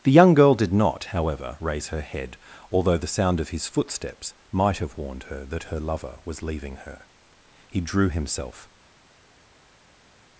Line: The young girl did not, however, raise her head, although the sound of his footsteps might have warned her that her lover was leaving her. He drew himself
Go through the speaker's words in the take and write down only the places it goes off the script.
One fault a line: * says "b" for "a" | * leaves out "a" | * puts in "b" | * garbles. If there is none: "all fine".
all fine